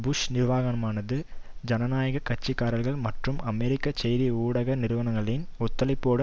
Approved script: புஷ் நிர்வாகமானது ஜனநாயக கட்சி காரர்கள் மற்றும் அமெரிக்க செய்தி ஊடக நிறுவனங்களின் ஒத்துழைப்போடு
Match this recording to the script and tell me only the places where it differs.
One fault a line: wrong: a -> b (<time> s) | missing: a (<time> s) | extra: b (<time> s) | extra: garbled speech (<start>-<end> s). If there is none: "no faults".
no faults